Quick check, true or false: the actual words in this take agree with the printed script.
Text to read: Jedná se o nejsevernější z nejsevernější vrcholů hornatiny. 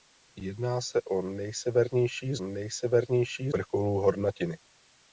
true